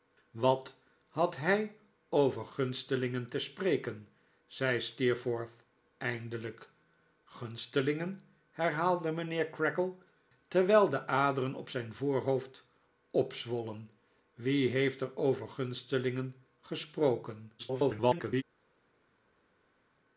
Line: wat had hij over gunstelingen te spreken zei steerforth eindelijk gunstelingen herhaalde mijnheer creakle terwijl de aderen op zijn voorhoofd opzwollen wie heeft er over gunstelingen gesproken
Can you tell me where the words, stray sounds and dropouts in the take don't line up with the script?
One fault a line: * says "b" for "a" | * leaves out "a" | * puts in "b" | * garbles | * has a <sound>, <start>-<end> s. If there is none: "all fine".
* garbles